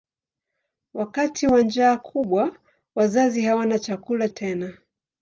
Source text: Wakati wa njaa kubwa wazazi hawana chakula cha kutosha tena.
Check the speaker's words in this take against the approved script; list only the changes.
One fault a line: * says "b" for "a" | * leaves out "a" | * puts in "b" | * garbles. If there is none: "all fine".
* leaves out "cha kutosha"